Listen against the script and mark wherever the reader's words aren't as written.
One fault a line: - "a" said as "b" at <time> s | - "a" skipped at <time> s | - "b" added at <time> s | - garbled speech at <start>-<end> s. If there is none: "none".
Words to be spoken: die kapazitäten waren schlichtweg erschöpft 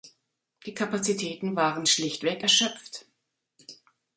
none